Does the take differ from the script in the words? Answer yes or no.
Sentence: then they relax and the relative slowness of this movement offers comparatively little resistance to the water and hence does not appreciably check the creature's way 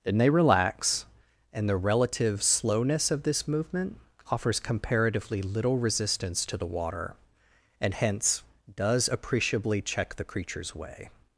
yes